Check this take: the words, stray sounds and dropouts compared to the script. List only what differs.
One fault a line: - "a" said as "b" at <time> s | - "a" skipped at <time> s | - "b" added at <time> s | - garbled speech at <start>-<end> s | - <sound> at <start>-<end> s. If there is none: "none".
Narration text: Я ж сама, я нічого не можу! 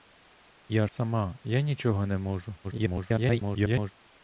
- "ж" skipped at 0.9 s
- garbled speech at 2.6-3.9 s